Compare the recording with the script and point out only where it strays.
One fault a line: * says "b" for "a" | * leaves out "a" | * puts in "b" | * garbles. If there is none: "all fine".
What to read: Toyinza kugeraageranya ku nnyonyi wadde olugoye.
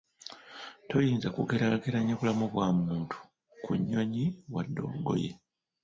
* puts in "bulamu bwa muntu"